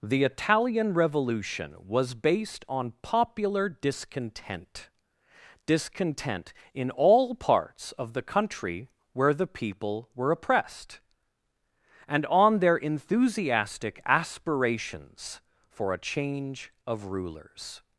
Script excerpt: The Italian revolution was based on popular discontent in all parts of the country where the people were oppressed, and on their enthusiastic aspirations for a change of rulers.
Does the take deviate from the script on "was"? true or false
false